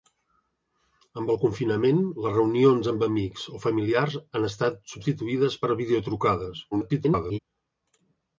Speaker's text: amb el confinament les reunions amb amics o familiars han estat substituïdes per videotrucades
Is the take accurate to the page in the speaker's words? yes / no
no